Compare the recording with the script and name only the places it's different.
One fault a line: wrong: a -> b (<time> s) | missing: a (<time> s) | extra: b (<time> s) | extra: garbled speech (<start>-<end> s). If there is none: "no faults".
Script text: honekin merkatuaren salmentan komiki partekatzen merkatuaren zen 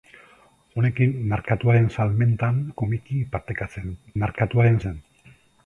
no faults